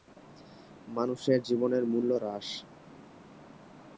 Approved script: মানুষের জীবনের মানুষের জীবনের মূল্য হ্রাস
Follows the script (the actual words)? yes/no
no